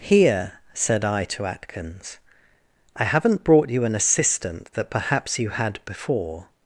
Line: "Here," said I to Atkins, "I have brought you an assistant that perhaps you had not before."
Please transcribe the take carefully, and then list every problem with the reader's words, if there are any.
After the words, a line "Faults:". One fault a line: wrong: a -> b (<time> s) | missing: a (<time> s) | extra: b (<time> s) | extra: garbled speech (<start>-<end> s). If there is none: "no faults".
"Here," said I to Atkins, "I haven't brought you an assistant that perhaps you had before."
Faults:
wrong: have -> haven't (3.0 s)
missing: not (5.8 s)